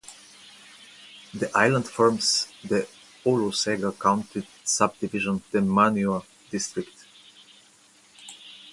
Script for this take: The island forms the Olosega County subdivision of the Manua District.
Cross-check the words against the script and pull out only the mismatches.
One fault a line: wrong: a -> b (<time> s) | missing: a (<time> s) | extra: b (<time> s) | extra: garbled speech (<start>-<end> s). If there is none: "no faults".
missing: of (5.4 s)